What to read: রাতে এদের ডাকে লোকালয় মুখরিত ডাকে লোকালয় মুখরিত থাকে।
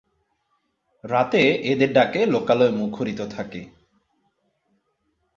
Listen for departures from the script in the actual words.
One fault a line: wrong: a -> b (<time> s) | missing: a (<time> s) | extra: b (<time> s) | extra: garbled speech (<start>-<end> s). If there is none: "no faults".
missing: ডাকে লোকালয় মুখরিত (3.2 s)